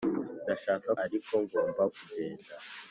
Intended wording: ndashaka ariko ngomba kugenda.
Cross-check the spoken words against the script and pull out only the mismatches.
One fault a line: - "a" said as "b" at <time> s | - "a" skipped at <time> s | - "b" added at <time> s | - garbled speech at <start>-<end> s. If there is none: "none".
none